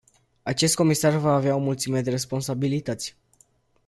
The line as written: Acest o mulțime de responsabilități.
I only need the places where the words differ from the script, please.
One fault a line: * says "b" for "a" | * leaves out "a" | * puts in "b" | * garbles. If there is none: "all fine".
* puts in "comisar va avea"